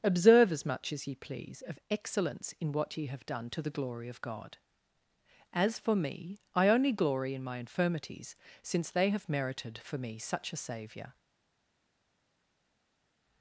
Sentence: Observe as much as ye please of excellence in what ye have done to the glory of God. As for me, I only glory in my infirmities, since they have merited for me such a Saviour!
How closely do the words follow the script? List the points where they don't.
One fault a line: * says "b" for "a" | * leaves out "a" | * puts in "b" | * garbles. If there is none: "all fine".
all fine